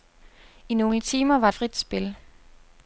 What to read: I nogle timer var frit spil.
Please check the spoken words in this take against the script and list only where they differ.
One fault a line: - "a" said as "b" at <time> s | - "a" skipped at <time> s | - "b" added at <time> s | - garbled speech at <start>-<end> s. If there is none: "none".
none